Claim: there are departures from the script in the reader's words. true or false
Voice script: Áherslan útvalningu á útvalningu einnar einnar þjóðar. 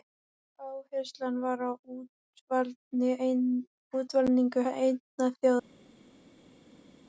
true